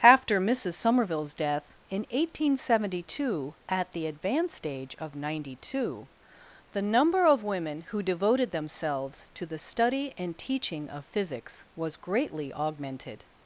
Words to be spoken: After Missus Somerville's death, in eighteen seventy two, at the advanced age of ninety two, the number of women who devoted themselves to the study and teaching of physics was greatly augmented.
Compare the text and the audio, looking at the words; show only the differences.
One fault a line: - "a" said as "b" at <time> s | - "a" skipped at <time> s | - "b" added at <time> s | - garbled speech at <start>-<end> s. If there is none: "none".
none